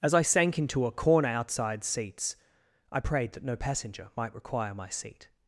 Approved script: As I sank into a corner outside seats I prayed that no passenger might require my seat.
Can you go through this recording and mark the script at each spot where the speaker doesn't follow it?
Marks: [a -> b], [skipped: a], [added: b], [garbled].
As I sank into a corner outside seats I prayed that no passenger might require my seat.